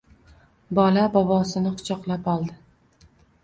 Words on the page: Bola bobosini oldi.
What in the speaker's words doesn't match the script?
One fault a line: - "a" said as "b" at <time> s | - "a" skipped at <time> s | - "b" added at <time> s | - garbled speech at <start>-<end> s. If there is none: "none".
- "quchoqlab" added at 1.8 s